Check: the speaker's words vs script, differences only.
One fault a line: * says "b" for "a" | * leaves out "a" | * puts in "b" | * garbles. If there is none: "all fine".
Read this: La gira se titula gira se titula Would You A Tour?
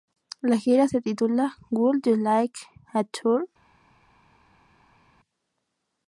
* leaves out "gira se titula"
* puts in "Like"